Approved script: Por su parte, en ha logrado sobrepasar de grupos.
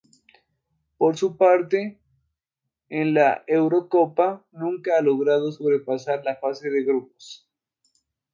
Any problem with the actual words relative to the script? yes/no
yes